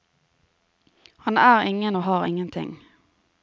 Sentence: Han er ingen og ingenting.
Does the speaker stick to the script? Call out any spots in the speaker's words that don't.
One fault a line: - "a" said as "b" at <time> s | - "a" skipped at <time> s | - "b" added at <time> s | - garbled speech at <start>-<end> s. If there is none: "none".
- "har" added at 2.0 s